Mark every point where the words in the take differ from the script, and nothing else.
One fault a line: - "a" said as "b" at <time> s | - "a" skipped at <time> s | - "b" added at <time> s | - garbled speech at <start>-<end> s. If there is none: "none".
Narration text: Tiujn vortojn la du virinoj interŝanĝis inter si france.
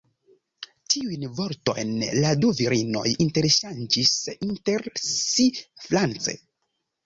none